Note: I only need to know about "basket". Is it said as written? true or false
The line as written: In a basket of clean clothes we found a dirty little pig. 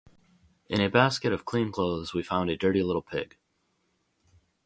true